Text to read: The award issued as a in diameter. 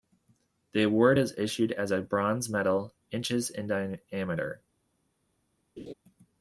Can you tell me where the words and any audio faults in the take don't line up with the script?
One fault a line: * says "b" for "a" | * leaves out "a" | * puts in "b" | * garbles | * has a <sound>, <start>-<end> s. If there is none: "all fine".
* puts in "is"
* puts in "bronze medal inches"
* has a laugh, 5.8-5.9 s